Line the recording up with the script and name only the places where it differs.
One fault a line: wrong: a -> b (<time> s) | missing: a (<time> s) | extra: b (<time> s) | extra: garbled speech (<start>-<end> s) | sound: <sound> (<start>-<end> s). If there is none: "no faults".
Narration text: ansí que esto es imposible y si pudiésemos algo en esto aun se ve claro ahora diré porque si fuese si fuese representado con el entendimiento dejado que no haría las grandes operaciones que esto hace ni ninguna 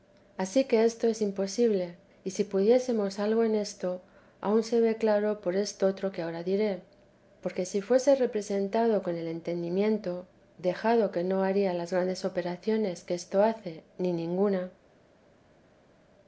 extra: por estotro que (5.4 s)
missing: si fuese (8.2 s)